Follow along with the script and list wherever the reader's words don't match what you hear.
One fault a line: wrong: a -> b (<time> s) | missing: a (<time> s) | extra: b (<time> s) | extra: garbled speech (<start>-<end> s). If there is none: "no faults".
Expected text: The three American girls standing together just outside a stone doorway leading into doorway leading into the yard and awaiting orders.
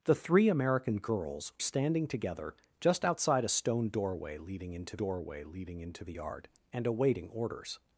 no faults